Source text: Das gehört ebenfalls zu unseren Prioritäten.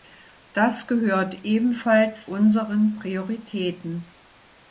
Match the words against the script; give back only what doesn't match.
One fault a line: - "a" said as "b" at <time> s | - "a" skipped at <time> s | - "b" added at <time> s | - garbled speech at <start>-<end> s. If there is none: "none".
- "zu" skipped at 2.3 s